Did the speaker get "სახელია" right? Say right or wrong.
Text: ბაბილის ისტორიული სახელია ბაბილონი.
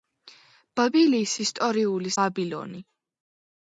wrong